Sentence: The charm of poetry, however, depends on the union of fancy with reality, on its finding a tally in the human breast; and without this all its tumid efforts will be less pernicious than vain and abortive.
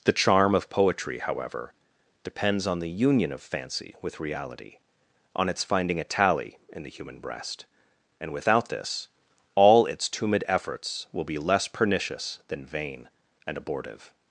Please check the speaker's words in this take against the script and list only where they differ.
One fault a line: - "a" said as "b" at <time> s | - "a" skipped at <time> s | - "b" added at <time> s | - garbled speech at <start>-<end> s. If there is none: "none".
none